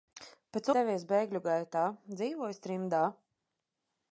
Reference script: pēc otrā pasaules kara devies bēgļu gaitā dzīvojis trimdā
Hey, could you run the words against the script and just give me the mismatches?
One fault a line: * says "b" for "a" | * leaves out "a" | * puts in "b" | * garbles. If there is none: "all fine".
* leaves out "otrā pasaules kara"